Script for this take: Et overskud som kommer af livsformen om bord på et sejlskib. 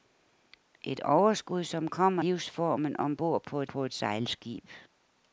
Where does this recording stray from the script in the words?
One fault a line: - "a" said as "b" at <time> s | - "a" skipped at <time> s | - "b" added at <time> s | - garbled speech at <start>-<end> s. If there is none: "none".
- "af" skipped at 2.2 s
- "på et" added at 3.6 s